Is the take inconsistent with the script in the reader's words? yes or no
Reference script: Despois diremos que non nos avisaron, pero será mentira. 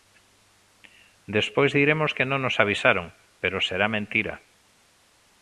no